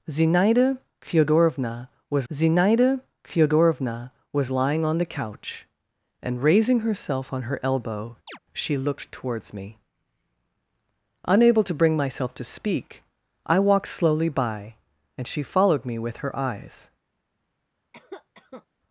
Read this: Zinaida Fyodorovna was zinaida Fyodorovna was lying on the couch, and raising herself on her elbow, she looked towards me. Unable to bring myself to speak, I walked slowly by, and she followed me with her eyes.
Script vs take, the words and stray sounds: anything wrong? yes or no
yes